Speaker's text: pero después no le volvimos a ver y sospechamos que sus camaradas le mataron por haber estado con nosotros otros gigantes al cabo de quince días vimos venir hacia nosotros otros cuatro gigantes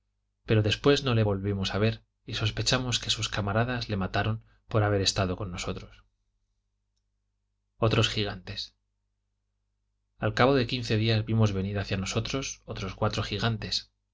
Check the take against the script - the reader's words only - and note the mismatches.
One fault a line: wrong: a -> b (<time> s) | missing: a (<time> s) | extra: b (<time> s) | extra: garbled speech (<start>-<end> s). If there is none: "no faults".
no faults